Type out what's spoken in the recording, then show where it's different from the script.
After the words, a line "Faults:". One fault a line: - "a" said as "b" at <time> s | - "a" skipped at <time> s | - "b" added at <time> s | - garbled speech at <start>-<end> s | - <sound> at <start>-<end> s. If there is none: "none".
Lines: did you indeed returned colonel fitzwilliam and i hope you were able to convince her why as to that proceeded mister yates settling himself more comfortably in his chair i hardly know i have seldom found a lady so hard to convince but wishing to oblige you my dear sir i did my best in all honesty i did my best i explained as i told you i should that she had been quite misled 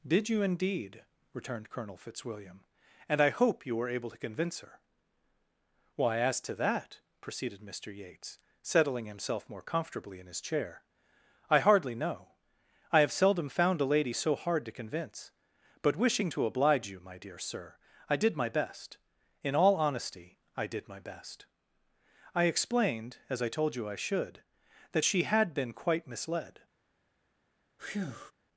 did you indeed returned colonel fitzwilliam and i hope you were able to convince her why as to that proceeded mister yates settling himself more comfortably in his chair i hardly know i have seldom found a lady so hard to convince but wishing to oblige you my dear sir i did my best in all honesty i did my best i explained as i told you i should that she had been quite misled
Faults:
- breath at 27.8-28.3 s